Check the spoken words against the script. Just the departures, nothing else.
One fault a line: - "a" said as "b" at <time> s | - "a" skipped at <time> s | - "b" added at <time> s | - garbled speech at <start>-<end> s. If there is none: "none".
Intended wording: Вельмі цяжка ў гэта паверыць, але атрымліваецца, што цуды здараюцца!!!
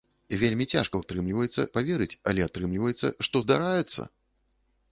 - "гэта" said as "атрымліваецца" at 1.0 s
- "цуды" skipped at 3.4 s